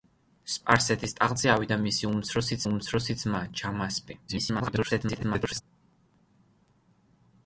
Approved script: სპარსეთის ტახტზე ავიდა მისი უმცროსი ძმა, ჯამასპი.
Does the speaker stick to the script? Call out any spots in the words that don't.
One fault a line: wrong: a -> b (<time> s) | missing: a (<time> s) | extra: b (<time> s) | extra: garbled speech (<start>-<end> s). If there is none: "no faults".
extra: უმცროსი (2.7 s)
extra: garbled speech (4.3-5.6 s)